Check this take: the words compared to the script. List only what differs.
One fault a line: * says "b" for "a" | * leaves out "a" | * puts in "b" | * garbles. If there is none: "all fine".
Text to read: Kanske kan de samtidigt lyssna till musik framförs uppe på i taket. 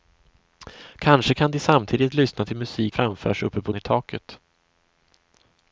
all fine